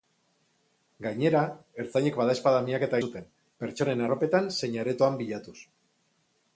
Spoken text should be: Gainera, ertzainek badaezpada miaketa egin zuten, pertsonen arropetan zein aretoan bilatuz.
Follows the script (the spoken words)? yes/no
no